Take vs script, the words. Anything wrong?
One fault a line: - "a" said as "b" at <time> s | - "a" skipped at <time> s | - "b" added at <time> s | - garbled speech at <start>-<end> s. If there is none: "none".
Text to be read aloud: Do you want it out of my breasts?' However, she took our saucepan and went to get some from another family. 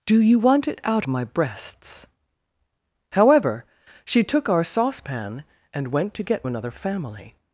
- "of" skipped at 1.1 s
- "some from" skipped at 6.5 s